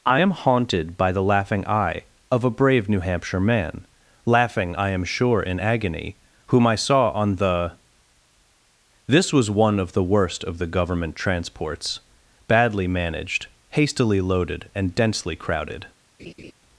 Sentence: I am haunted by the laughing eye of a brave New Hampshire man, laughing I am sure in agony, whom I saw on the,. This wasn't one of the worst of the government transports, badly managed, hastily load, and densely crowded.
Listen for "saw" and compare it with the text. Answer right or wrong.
right